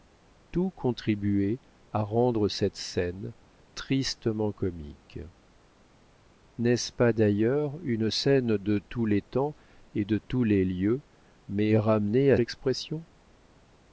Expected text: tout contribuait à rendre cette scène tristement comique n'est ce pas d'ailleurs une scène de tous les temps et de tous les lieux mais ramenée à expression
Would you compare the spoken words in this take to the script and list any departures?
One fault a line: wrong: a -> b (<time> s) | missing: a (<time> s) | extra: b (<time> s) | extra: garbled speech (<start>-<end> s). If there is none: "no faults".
no faults